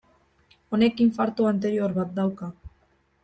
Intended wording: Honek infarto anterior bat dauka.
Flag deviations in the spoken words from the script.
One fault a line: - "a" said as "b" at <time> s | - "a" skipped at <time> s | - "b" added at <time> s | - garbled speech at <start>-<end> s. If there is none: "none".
none